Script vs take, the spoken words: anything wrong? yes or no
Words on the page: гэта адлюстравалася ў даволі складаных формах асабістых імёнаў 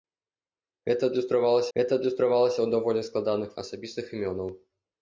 yes